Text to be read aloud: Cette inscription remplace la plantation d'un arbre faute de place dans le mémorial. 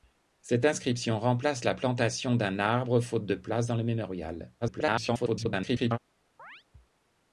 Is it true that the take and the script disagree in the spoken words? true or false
true